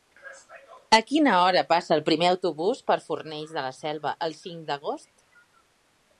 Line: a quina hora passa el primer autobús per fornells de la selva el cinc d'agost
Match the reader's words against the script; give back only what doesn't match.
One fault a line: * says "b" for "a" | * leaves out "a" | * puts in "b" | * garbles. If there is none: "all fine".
all fine